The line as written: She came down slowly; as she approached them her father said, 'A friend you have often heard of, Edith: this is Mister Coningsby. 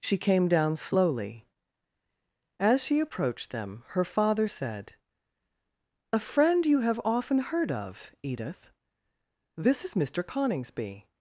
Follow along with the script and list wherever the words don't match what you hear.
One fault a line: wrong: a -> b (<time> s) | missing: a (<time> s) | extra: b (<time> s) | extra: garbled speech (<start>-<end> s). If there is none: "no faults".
no faults